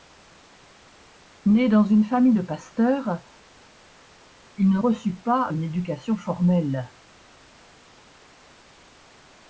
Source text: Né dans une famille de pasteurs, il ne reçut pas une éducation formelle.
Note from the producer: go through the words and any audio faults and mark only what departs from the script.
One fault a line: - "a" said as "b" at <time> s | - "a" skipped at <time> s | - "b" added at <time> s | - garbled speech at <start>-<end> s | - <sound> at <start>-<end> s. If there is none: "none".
none